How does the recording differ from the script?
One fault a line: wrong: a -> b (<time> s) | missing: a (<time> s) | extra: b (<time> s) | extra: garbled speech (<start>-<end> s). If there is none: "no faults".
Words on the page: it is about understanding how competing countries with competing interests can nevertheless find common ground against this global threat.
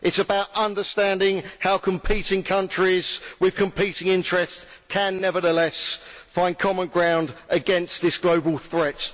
no faults